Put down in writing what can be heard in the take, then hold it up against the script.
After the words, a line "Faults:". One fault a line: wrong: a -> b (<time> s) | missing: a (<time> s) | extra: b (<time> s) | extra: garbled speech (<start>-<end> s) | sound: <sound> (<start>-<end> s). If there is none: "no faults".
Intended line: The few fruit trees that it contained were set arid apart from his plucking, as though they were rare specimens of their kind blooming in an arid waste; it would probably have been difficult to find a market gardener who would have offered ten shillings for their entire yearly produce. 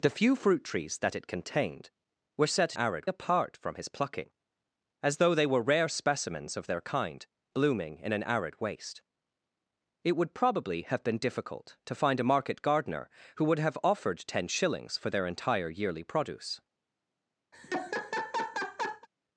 The few fruit trees that it contained were set arid apart from his plucking, as though they were rare specimens of their kind blooming in an arid waste; it would probably have been difficult to find a market gardener who would have offered ten shillings for their entire yearly produce.
Faults:
sound: laugh (17.5-19.1 s)